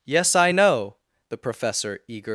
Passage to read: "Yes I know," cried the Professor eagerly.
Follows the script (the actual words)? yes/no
no